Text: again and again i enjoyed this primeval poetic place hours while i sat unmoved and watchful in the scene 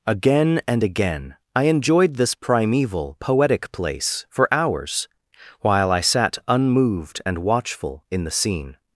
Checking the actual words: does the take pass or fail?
fail